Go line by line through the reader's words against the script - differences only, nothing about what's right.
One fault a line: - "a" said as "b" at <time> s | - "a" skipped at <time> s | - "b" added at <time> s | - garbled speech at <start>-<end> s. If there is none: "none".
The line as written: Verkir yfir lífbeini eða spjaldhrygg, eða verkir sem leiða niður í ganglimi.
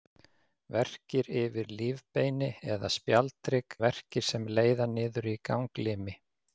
- "eða" skipped at 3.8 s